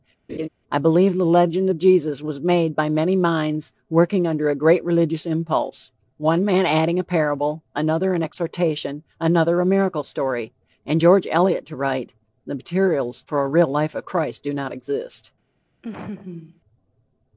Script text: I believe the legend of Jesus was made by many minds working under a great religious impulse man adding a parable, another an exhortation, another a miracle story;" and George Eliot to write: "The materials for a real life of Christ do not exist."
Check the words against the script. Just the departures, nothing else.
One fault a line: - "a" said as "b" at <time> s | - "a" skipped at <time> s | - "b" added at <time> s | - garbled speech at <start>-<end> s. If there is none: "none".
- "one" added at 6.2 s